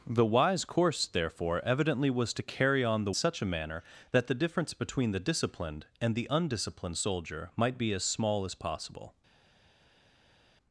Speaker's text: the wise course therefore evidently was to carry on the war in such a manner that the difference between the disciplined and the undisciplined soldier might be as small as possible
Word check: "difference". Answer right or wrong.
right